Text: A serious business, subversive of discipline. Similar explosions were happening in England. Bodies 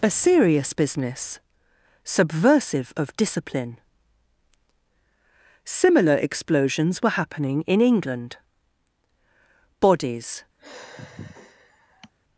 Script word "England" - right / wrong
right